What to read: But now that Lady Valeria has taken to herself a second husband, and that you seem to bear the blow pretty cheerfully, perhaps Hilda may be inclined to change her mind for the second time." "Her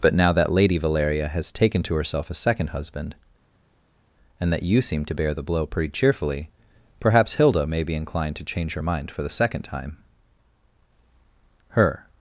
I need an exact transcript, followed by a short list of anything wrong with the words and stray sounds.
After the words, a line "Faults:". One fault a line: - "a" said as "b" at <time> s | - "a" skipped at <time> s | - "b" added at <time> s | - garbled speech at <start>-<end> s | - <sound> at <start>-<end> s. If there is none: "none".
But now that Lady Valeria has taken to herself a second husband, and that you seem to bear the blow pretty cheerfully, perhaps Hilda may be inclined to change her mind for the second time." "Her
Faults:
none